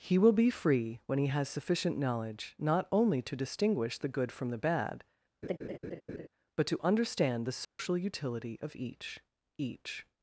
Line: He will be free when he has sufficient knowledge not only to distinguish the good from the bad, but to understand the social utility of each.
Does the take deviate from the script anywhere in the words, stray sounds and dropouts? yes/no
yes